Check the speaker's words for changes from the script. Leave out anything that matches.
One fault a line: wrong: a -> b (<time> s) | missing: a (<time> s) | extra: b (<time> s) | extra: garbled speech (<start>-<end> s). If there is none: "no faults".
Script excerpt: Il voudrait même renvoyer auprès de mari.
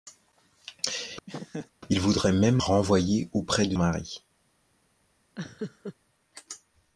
no faults